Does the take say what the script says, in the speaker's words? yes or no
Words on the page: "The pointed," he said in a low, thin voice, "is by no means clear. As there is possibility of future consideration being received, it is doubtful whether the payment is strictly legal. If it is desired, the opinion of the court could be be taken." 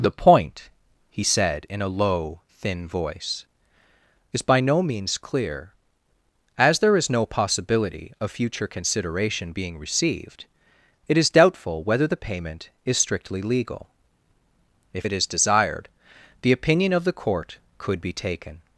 no